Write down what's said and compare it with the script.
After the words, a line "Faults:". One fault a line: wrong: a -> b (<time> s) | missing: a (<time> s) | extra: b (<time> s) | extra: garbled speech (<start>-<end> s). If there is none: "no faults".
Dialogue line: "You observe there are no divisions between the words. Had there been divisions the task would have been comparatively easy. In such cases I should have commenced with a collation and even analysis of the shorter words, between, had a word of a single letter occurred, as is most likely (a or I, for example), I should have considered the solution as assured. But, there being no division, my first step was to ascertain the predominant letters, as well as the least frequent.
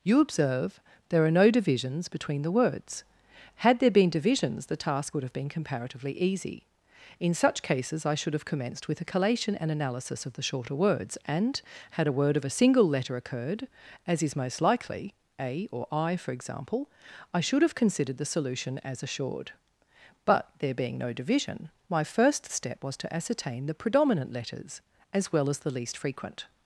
"You observe there are no divisions between the words. Had there been divisions the task would have been comparatively easy. In such cases I should have commenced with a collation and analysis of the shorter words, and, had a word of a single letter occurred, as is most likely (a or I, for example), I should have considered the solution as assured. But, there being no division, my first step was to ascertain the predominant letters, as well as the least frequent.
Faults:
missing: even (9.7 s)
wrong: between -> and (11.2 s)